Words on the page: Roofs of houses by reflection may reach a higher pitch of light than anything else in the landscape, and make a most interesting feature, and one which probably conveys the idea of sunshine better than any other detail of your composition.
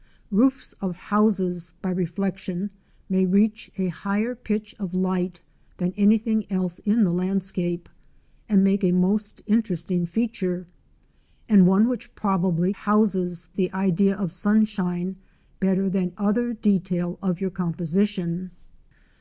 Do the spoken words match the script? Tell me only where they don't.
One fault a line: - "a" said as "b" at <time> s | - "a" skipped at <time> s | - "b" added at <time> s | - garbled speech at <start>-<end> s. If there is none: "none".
- "conveys" said as "houses" at 12.7 s
- "any" skipped at 16.1 s